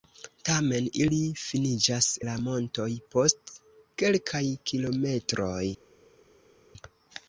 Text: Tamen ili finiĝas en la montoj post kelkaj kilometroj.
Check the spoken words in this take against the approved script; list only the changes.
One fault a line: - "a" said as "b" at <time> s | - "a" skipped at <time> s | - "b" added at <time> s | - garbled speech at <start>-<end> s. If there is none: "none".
- "en" skipped at 2.1 s